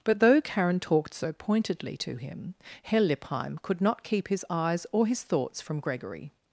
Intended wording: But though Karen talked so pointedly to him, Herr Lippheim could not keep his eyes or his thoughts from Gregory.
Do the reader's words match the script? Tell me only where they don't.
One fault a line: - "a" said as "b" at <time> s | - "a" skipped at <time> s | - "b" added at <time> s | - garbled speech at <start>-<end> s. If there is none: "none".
none